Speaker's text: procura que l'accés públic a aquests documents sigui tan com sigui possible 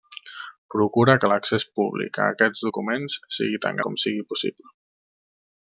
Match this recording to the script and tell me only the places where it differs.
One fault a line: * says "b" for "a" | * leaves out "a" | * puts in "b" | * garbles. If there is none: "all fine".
all fine